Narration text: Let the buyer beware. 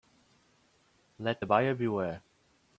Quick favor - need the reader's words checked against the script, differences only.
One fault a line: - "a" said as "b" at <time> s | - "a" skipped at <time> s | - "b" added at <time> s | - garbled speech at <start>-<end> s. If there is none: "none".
none